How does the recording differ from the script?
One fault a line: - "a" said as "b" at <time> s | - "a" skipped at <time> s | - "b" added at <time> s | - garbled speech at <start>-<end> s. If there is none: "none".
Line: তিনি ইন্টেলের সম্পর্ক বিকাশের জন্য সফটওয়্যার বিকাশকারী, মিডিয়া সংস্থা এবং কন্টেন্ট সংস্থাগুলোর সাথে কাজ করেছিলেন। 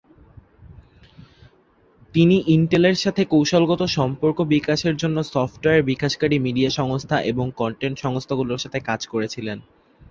- "সাথে কৌশলগত" added at 3.0 s